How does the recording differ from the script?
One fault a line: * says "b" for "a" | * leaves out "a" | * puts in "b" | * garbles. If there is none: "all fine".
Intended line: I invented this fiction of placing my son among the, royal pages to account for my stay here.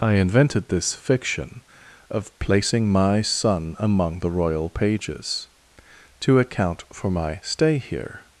all fine